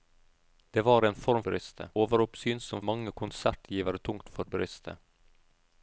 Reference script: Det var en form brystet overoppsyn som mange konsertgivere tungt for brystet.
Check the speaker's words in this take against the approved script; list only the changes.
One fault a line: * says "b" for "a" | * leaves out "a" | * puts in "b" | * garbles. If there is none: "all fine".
all fine